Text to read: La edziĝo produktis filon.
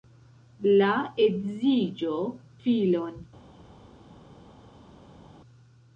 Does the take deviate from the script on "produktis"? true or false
true